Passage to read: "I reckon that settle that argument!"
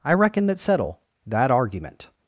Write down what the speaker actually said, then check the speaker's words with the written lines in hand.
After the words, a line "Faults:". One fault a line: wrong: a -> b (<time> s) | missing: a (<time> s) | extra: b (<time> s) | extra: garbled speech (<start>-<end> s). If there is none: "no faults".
"I reckon that settle that argument!"
Faults:
no faults